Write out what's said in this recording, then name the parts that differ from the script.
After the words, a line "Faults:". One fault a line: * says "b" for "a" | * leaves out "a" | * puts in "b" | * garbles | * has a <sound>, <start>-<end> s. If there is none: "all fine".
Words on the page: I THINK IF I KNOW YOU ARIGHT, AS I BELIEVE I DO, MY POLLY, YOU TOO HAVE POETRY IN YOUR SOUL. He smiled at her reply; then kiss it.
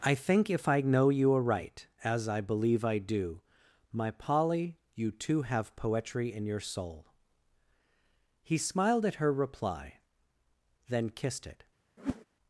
I THINK IF I KNOW YOU ARIGHT, AS I BELIEVE I DO, MY POLLY, YOU TOO HAVE POETRY IN YOUR SOUL. He smiled at her reply; then kissed it.
Faults:
* says "kissed" for "kiss"
* has a whoosh, 12.0-12.3 s